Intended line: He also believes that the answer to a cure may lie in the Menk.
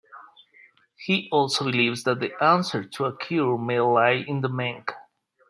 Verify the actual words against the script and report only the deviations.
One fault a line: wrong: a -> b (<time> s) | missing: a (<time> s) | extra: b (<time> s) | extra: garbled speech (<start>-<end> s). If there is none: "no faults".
no faults